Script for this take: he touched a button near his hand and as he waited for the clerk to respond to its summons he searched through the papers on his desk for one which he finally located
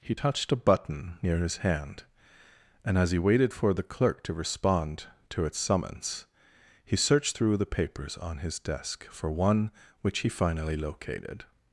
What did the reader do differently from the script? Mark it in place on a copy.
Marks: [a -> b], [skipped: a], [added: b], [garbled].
he touched a button near his hand and as he waited for the clerk to respond to its summons he searched through the papers on his desk for one which he finally located